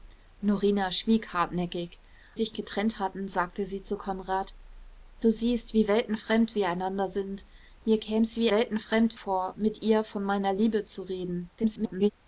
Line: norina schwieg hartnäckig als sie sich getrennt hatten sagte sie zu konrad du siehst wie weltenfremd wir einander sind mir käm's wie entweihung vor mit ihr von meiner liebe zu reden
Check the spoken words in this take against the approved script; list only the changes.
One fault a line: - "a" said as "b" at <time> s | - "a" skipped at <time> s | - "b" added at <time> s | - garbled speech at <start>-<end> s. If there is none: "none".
- "als sie" skipped at 2.0 s
- "entweihung" said as "weltenfremd" at 8.5 s
- garbled speech at 11.6-12.1 s